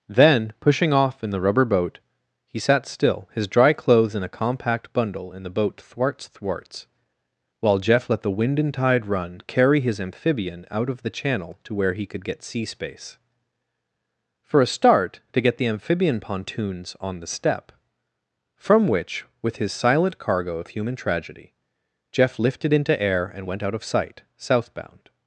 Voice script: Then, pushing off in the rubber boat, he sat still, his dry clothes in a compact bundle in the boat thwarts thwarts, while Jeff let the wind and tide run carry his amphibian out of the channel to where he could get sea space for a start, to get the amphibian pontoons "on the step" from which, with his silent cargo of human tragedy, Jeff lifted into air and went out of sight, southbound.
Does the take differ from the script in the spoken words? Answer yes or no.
no